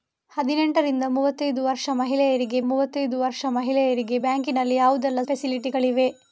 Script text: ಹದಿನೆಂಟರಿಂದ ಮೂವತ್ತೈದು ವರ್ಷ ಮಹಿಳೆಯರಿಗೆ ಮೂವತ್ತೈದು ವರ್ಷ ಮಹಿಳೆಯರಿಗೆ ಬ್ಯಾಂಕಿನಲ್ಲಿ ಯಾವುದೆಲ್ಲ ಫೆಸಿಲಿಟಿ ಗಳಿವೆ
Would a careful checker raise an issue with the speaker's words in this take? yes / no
no